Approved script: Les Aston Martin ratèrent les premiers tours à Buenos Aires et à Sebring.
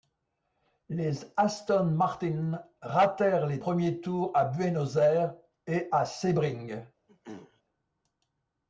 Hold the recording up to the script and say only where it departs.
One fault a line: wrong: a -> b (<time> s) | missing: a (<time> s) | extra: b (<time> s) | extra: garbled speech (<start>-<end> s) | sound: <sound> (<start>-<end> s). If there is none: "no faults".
sound: throat clearing (7.1-7.6 s)